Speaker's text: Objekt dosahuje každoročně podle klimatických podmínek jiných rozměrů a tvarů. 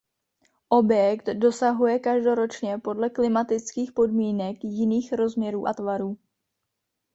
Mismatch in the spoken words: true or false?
false